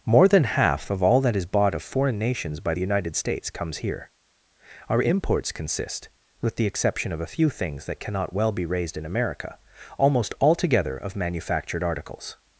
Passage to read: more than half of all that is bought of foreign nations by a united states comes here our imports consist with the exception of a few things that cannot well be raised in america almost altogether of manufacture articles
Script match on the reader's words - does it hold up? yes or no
no